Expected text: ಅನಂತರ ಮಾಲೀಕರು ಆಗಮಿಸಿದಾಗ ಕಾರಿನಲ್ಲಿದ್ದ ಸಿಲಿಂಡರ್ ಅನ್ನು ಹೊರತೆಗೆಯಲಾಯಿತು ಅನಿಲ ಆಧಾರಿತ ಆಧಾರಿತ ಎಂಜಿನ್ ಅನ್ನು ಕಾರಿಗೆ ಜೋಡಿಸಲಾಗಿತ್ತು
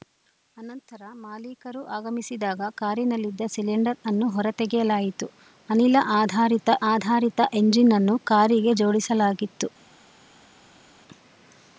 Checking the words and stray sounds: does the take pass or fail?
pass